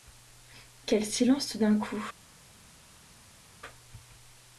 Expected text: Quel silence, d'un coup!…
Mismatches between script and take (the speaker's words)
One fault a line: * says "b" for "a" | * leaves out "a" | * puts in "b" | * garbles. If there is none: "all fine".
* puts in "tout"